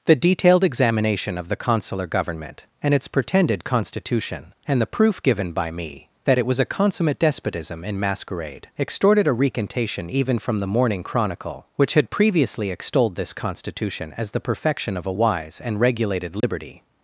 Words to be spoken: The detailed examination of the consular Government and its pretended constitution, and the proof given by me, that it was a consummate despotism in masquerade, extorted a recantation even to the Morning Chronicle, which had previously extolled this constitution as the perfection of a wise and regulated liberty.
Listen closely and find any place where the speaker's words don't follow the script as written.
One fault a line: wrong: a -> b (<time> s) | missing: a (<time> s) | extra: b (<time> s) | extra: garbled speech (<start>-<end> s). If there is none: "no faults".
wrong: to -> from (10.4 s)